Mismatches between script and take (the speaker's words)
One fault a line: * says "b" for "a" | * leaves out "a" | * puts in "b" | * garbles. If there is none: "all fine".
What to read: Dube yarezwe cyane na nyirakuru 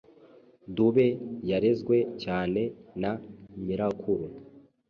all fine